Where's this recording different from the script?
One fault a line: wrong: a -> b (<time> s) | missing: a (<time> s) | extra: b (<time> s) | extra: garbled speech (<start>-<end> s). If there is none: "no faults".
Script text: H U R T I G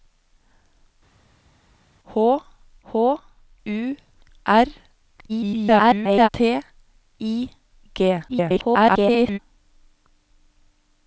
extra: h (2.9 s)
extra: garbled speech (5.3-6.3 s)
extra: garbled speech (8.3-9.4 s)